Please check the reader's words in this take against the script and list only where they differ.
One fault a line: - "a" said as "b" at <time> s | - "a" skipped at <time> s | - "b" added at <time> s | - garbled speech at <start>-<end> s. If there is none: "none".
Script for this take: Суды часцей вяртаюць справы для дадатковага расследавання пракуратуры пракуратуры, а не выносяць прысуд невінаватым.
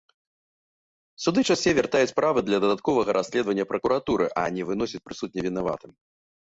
- "пракуратуры" skipped at 4.2 s